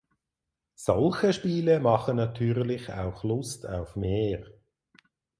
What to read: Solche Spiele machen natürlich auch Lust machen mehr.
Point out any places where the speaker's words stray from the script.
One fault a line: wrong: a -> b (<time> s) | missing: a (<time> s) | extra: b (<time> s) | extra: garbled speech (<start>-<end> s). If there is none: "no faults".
wrong: machen -> auf (3.7 s)